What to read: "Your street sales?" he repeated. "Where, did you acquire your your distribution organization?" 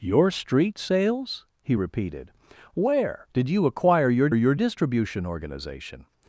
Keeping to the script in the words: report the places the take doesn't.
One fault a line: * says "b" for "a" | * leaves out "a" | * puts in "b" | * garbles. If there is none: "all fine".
all fine